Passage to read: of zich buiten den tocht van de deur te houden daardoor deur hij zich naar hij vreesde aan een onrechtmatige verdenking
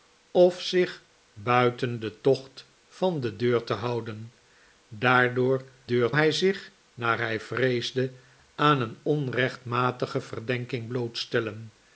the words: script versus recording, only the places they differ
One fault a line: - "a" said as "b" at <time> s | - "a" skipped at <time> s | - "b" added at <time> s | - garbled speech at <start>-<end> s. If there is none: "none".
none